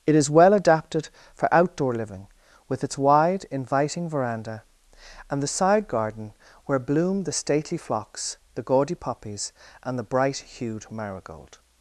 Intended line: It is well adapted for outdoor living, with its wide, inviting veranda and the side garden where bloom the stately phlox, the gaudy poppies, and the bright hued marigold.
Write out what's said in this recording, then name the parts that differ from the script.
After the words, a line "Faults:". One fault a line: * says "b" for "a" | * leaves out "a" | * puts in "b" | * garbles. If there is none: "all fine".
It is well adapted for outdoor living, with its wide, inviting veranda and the side garden where bloom the stately phlox, the gaudy poppies, and the bright hued marigold.
Faults:
all fine